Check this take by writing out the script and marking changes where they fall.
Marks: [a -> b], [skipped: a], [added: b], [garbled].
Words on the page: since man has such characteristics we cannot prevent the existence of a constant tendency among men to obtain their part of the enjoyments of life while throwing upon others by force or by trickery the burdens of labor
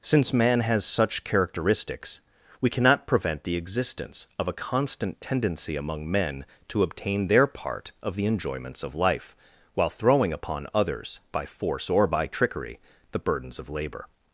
since man has such characteristics we cannot prevent the existence of a constant tendency among men to obtain their part of the enjoyments of life while throwing upon others by force or by trickery the burdens of labor